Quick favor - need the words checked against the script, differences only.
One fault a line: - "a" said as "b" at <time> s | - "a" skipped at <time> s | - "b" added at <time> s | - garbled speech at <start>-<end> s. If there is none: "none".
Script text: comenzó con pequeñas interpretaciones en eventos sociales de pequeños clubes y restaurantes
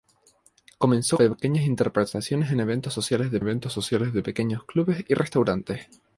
- "con" skipped at 1.2 s
- "eventos sociales de" added at 3.4 s